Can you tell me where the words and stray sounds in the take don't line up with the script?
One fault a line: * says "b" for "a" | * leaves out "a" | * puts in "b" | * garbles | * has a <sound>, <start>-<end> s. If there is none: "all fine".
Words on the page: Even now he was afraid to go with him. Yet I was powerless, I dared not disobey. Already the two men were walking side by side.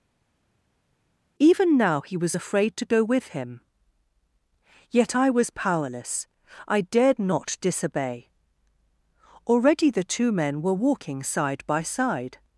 all fine